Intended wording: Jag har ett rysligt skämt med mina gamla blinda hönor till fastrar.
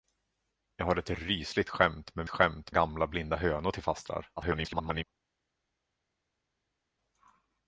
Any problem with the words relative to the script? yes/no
yes